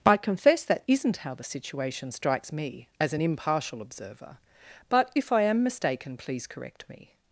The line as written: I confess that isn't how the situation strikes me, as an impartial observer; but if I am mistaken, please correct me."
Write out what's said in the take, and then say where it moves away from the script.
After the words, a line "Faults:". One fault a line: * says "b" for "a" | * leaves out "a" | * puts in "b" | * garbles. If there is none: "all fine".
I confess that isn't how the situation strikes me, as an impartial observer; but if I am mistaken, please correct me."
Faults:
all fine